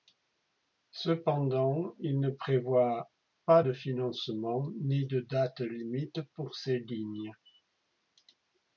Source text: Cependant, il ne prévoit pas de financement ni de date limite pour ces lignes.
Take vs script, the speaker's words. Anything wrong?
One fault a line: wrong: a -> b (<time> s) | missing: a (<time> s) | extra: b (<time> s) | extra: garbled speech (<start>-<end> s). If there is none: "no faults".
no faults